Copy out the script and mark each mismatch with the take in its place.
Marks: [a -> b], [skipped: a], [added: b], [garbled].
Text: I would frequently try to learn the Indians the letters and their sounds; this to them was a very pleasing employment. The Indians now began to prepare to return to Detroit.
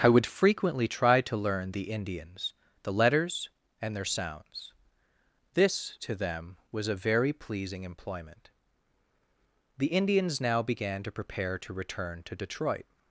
I would frequently try to learn the Indians the letters and their sounds; this to them was a very pleasing employment. The Indians now began to prepare to return to Detroit.